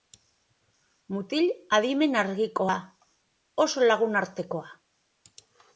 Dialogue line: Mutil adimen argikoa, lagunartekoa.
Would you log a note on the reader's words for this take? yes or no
yes